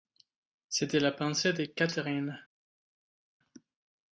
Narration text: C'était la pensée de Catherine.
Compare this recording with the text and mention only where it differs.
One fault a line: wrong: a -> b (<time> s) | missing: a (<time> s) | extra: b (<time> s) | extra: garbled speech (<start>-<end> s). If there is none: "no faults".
no faults